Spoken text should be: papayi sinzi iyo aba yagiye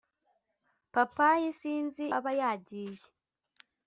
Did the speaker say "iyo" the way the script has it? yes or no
no